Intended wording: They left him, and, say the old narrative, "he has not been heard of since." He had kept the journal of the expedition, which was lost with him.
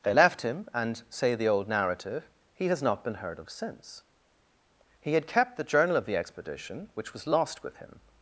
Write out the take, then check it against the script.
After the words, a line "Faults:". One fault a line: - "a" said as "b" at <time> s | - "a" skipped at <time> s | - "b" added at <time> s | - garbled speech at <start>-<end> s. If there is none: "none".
They left him, and, say the old narrative, "he has not been heard of since." He had kept the journal of the expedition, which was lost with him.
Faults:
none